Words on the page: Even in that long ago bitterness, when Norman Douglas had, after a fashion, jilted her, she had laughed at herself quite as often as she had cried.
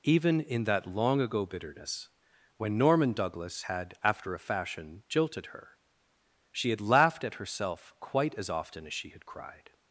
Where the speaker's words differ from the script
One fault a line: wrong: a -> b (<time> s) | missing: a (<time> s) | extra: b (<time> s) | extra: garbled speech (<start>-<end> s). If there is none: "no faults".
no faults